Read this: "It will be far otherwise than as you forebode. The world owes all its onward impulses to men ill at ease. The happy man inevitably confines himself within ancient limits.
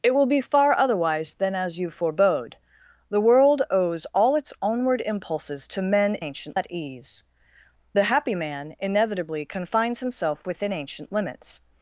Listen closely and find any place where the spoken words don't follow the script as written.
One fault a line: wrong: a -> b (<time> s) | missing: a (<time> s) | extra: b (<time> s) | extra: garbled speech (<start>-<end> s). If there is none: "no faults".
wrong: ill -> ancient (6.2 s)